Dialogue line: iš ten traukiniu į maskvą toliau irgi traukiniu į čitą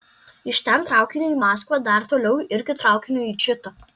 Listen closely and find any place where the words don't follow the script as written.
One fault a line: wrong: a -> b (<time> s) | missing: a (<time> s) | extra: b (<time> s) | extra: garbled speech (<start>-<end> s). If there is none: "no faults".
extra: dar (1.9 s)